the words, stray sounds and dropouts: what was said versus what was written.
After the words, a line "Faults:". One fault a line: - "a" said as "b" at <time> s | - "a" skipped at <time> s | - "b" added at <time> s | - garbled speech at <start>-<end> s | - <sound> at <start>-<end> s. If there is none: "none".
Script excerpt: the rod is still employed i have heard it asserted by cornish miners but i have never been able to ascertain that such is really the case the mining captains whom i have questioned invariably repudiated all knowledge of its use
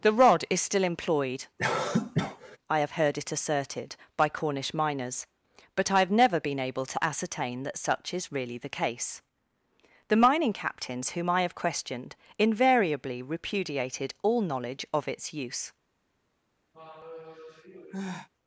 the rod is still employed i have heard it asserted by cornish miners but i have never been able to ascertain that such is really the case the mining captains whom i have questioned invariably repudiated all knowledge of its use
Faults:
- cough at 1.6-2.6 s
- sigh at 16.7-18.3 s